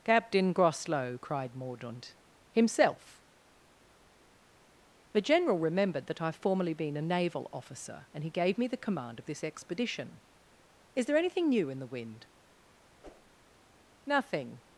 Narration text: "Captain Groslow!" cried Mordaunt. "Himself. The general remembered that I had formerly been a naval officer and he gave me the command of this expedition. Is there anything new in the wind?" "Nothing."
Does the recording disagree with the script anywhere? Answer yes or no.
yes